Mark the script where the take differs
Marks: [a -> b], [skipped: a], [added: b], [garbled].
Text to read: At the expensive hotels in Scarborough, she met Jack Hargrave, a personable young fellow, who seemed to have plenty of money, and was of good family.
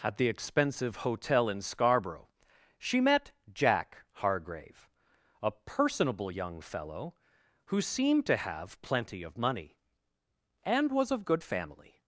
At the expensive [hotels -> hotel] in Scarborough, she met Jack Hargrave, a personable young fellow, who seemed to have plenty of money, and was of good family.